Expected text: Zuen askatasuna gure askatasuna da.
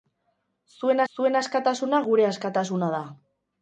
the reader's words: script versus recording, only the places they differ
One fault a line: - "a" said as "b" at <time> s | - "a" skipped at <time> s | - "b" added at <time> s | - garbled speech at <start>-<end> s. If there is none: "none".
- "zuen" added at 1.1 s